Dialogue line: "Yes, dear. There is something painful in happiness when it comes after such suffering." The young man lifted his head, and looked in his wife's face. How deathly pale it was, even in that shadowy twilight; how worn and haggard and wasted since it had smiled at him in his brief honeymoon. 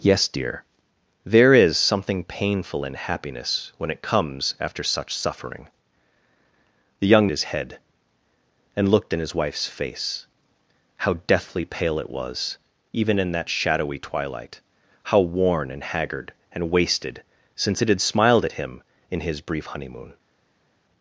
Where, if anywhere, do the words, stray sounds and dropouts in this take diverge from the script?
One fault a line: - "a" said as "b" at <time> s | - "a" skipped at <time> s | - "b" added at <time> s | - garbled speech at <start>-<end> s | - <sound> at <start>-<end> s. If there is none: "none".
- "man lifted" skipped at 7.3 s